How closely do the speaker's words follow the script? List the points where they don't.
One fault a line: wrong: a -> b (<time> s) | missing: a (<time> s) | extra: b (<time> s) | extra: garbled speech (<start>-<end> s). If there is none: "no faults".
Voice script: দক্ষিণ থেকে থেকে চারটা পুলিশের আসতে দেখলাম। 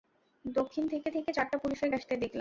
no faults